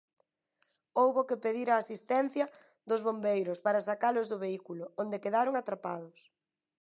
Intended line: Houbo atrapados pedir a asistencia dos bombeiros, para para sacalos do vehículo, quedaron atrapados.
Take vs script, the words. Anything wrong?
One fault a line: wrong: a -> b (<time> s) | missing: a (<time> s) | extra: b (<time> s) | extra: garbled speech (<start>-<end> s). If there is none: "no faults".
wrong: atrapados -> que (1.3 s)
missing: para (3.8 s)
extra: onde (5.0 s)